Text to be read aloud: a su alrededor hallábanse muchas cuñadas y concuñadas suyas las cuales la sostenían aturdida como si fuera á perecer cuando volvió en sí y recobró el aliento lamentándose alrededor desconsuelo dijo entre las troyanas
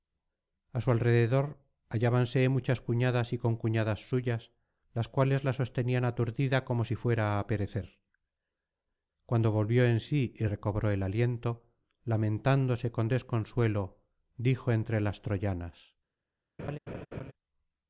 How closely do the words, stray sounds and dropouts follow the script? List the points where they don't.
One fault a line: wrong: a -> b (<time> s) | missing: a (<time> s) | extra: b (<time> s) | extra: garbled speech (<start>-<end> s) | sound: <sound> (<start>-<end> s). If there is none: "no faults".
wrong: alrededor -> con (12.9 s)
sound: laugh (16.6-17.3 s)